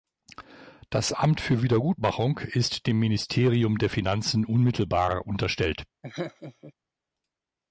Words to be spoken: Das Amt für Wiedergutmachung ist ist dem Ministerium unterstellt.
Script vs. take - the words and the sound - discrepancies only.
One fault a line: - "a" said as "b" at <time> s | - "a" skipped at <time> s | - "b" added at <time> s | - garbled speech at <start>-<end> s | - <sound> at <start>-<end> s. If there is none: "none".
- "ist" skipped at 2.9 s
- "der Finanzen unmittelbar" added at 3.8 s
- laugh at 6.0-6.7 s